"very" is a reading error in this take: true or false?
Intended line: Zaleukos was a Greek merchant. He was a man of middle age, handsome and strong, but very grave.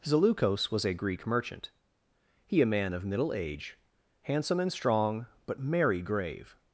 true